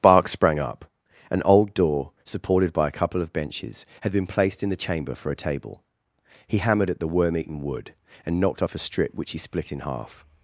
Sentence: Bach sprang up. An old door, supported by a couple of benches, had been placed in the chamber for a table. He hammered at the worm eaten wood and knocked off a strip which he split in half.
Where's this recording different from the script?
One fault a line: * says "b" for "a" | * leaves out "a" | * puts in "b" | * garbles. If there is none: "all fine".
* says "Bark" for "Bach"